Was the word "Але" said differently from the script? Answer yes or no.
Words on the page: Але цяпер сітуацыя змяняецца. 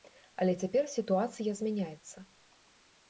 no